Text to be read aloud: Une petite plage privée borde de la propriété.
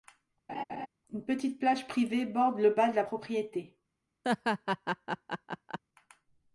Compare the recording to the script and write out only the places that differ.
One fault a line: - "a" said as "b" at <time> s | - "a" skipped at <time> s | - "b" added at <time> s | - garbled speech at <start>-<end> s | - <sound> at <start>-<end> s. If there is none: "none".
- laugh at 0.5-0.9 s
- "le bas" added at 2.6 s
- laugh at 4.2-5.8 s